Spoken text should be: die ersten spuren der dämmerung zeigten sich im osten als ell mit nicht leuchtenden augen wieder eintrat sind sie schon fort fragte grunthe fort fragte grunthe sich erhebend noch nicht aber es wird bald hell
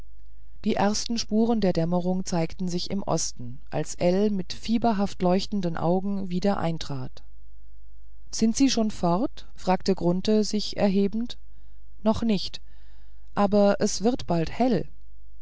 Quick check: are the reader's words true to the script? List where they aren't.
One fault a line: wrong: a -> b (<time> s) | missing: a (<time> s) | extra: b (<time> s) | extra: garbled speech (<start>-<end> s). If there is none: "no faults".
wrong: nicht -> fieberhaft (4.5 s)
missing: fort fragte grunthe (10.4 s)